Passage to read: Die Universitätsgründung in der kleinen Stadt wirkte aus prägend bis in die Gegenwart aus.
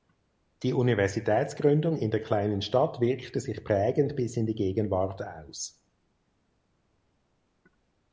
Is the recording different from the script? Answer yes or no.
yes